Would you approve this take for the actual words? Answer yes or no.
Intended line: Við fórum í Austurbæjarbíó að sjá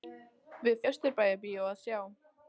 no